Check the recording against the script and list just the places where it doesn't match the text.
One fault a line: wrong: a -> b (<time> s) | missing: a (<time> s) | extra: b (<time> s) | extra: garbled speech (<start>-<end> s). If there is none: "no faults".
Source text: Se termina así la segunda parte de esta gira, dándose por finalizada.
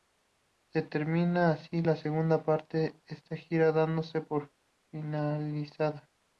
no faults